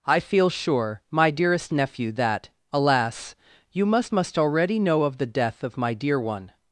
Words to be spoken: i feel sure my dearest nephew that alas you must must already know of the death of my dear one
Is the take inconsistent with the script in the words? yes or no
no